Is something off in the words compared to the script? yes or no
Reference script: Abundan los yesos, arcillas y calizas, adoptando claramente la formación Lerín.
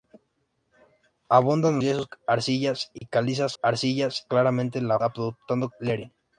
yes